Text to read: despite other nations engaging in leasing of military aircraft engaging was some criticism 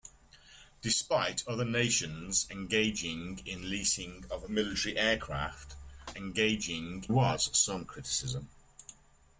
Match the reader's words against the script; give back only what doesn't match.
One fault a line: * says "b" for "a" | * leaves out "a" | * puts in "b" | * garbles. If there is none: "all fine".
all fine